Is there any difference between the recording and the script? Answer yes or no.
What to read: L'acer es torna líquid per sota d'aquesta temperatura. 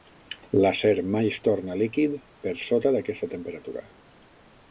yes